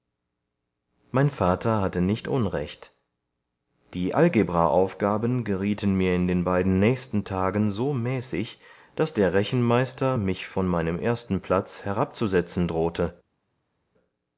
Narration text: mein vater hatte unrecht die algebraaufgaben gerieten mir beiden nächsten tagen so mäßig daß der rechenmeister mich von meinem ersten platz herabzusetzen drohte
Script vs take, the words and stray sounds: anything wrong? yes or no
yes